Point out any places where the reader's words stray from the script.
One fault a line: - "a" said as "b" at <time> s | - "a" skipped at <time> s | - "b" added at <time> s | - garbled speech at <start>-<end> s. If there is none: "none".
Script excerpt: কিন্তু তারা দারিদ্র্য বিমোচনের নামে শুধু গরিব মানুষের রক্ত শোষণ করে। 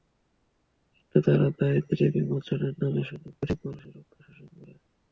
none